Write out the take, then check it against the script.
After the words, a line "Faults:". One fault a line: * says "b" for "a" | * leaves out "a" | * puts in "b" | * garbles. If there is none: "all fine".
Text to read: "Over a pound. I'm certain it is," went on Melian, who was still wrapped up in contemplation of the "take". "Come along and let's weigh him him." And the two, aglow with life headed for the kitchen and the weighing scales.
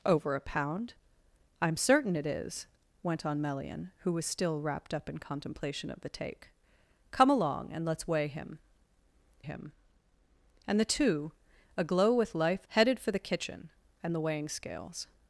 "Over a pound. I'm certain it is," went on Melian, who was still wrapped up in contemplation of the "take". "Come along and let's weigh him him." And the two, aglow with life headed for the kitchen and the weighing scales.
Faults:
all fine